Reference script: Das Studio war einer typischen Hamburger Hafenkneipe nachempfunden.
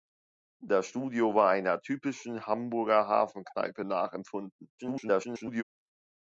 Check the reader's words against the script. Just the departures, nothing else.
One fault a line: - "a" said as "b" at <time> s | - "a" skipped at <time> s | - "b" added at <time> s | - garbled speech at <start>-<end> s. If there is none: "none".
- garbled speech at 4.8-5.6 s